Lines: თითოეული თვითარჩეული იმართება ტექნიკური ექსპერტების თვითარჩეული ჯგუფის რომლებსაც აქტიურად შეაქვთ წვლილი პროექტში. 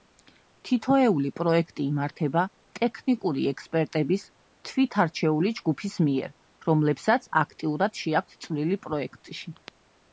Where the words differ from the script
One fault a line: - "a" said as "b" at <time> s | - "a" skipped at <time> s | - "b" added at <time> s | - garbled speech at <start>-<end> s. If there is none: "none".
- "თვითარჩეული" said as "პროექტი" at 1.4 s
- "მიერ" added at 6.1 s